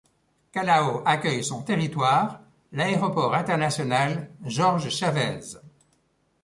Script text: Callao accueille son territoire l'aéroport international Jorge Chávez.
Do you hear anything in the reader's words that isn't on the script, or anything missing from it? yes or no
no